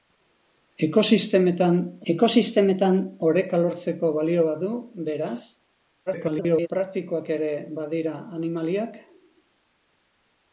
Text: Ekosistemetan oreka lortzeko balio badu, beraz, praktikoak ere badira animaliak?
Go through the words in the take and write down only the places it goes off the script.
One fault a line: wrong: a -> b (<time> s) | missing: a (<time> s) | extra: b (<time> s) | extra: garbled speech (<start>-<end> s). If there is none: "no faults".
extra: ekosistemetan (2.1 s)
extra: garbled speech (6.1-6.7 s)